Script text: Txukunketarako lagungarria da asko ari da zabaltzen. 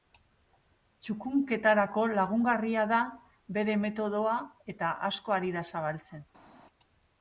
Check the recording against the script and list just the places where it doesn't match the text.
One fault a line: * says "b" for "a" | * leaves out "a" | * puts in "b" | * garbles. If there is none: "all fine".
* puts in "bere metodoa eta"